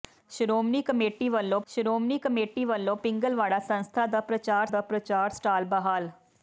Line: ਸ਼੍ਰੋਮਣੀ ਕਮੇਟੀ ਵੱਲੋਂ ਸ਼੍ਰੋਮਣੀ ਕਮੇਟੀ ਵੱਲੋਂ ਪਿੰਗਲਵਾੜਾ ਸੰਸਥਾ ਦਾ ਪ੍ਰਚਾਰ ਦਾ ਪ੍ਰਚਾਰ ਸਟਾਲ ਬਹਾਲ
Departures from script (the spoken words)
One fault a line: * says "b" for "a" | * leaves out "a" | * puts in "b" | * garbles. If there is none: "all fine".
all fine